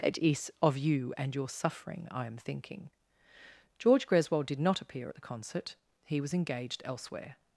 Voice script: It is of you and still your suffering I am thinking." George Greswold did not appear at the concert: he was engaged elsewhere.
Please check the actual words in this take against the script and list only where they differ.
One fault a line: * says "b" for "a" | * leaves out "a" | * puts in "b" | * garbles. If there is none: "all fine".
* leaves out "still"